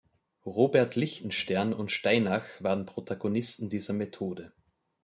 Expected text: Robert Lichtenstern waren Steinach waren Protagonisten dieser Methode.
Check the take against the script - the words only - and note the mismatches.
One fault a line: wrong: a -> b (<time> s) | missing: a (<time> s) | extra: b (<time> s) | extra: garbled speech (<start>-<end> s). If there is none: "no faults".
wrong: waren -> und (1.7 s)